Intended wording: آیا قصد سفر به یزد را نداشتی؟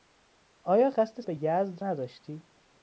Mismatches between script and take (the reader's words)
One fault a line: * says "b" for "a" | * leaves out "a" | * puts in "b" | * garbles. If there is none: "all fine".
* leaves out "سفر"
* leaves out "را"